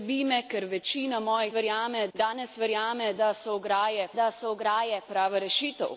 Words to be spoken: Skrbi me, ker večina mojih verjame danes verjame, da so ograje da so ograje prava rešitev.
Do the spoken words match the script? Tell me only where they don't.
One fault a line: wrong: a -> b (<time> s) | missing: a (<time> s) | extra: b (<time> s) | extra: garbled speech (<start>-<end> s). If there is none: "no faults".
no faults